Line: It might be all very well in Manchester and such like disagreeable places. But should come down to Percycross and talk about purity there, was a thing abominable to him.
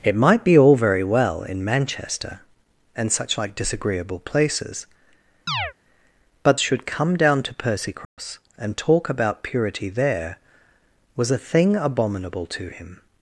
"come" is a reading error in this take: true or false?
false